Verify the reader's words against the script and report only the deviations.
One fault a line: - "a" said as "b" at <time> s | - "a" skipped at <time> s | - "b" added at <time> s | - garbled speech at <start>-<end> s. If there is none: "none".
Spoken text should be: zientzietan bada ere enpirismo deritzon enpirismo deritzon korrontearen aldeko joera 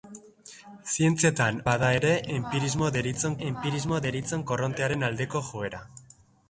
none